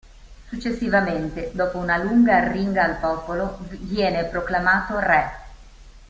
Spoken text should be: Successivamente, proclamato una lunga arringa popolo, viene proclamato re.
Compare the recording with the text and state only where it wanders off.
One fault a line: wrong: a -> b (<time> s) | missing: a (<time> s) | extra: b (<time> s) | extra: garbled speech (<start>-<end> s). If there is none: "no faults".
wrong: proclamato -> dopo (1.5 s)
extra: al (2.8 s)